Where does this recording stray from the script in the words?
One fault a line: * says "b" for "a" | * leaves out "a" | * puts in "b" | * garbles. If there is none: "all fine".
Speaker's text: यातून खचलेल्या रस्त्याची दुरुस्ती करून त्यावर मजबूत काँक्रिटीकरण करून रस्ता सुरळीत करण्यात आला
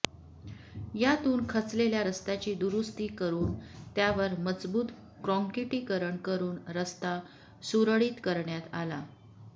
all fine